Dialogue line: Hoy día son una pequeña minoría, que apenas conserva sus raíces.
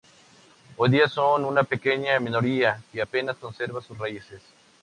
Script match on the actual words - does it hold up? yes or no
yes